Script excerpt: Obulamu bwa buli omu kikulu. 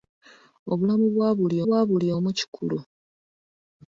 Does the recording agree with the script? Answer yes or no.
no